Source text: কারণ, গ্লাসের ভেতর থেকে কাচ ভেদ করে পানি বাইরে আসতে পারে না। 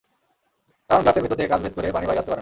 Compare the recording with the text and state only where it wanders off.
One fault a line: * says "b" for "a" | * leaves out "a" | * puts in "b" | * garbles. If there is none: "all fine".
all fine